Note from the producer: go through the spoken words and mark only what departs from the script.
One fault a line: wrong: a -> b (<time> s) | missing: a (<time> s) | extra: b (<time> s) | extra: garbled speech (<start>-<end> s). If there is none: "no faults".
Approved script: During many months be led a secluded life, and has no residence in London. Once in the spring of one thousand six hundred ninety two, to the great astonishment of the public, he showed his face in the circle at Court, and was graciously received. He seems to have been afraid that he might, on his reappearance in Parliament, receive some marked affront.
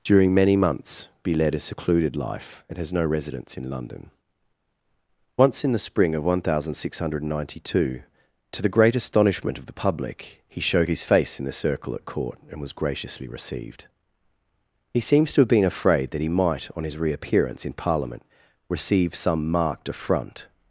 no faults